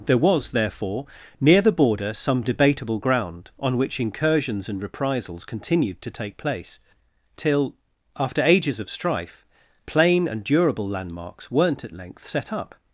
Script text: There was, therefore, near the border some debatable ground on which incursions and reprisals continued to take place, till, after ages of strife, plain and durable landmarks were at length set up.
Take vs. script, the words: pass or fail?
fail